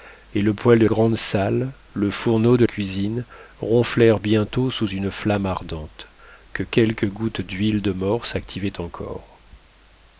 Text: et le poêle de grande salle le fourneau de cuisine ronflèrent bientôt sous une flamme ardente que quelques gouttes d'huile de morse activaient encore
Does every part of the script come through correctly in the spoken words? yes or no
yes